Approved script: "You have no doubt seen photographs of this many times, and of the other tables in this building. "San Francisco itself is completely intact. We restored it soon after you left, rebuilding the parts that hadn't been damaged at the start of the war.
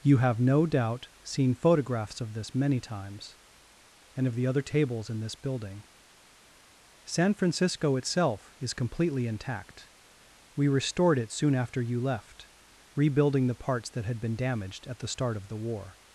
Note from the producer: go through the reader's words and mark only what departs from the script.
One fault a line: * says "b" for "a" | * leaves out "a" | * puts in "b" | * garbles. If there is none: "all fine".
* says "had" for "hadn't"